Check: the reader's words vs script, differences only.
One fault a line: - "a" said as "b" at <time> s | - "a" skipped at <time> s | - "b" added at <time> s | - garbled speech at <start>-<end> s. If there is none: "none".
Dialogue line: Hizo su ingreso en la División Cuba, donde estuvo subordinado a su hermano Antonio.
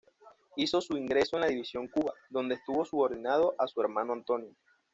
none